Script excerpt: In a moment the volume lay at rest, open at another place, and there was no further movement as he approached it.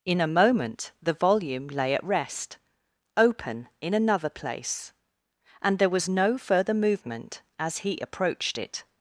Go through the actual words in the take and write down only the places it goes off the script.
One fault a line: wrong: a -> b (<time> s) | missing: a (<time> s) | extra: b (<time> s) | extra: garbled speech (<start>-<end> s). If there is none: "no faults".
wrong: at -> in (3.8 s)